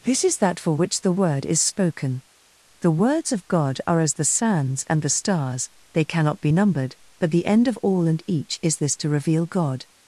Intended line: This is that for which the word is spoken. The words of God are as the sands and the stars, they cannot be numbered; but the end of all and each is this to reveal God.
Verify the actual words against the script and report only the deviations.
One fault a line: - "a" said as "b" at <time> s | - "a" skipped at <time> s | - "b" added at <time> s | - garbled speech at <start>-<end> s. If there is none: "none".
none